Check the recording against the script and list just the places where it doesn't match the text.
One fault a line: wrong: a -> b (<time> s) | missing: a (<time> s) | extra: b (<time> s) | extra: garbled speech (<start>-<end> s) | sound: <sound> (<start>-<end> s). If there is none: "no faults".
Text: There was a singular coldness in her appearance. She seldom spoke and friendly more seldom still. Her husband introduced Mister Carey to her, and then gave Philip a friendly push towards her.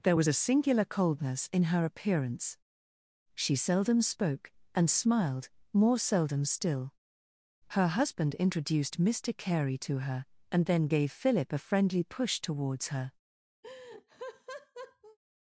wrong: friendly -> smiled (4.9 s)
sound: laugh (13.6-15.2 s)